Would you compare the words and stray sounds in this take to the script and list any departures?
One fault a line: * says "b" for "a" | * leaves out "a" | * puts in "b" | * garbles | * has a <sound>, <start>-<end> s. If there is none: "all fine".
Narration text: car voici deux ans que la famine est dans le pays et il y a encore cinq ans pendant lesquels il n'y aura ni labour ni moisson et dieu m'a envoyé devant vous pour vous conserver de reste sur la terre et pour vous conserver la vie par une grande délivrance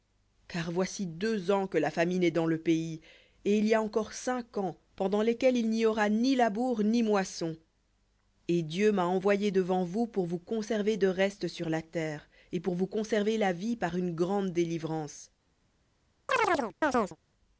* has a chirp, 16.3-17.2 s